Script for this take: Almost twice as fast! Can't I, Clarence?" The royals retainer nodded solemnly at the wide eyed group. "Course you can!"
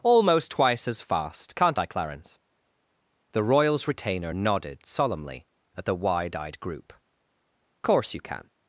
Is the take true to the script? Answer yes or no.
yes